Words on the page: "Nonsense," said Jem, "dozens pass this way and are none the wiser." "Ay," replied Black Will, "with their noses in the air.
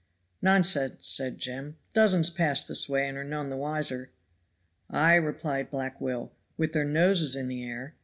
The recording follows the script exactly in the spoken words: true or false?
true